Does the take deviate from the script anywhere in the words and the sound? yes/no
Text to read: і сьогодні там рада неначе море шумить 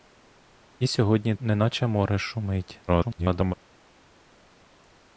yes